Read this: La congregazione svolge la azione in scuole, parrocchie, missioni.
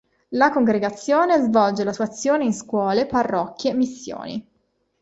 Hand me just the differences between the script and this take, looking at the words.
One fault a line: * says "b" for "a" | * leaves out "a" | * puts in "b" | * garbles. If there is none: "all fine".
* puts in "sua"